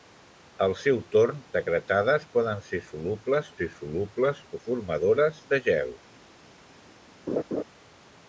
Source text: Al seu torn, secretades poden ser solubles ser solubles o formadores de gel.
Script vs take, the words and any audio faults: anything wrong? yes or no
yes